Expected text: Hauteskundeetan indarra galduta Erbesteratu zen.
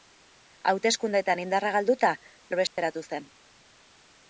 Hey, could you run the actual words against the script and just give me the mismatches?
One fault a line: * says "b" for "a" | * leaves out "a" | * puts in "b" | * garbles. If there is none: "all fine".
all fine